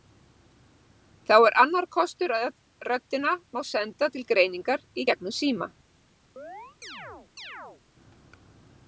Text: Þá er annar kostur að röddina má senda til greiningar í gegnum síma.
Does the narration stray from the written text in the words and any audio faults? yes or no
yes